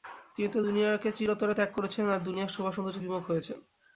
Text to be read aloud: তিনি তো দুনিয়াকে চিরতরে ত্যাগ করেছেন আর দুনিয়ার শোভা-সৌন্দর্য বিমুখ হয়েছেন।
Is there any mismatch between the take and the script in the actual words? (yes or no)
no